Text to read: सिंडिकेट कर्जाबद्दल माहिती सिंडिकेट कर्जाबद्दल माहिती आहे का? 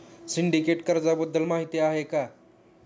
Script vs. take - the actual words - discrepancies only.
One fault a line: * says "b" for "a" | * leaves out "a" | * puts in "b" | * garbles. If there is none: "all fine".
* leaves out "सिंडिकेट कर्जाबद्दल माहिती"